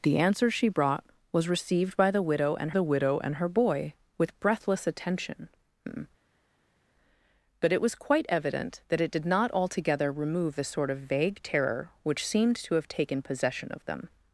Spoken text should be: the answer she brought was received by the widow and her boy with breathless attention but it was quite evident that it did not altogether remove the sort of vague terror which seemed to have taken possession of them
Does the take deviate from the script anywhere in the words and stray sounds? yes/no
yes